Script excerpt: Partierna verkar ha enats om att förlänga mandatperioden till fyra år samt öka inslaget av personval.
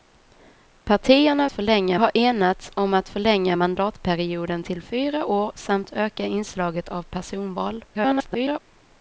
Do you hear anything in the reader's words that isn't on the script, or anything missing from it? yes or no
yes